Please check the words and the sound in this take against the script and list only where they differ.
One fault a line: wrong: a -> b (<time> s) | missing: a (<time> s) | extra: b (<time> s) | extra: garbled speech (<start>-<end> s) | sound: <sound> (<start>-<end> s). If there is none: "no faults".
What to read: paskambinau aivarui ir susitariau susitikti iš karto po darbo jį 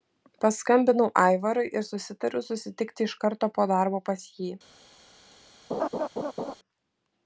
extra: pas (4.1 s)
sound: laugh (5.7-6.5 s)